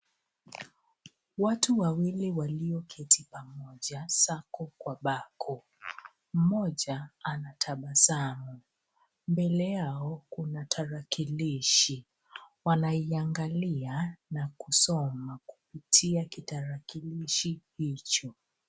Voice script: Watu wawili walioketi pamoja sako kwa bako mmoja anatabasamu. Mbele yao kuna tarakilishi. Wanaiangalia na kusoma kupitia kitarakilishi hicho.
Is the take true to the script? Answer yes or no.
yes